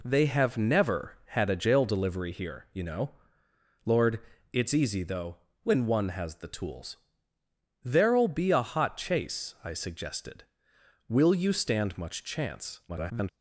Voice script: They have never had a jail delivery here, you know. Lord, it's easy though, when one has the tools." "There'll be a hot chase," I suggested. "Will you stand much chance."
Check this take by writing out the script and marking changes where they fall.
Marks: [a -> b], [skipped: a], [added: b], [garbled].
They have never had a jail delivery here, you know. Lord, it's easy though, when one has the tools." "There'll be a hot chase," I suggested. "Will you stand much chance." [garbled]